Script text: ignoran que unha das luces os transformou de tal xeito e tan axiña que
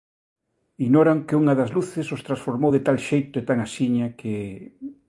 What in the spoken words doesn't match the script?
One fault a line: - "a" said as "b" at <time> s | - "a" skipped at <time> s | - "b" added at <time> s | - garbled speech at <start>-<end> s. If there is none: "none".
none